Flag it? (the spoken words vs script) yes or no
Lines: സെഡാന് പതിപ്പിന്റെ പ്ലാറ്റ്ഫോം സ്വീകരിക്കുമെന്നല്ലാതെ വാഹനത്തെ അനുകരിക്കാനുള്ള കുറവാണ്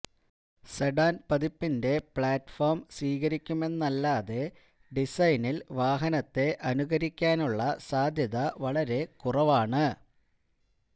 yes